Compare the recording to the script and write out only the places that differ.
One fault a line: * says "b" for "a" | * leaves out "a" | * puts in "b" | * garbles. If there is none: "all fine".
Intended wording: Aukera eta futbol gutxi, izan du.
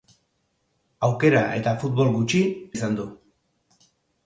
all fine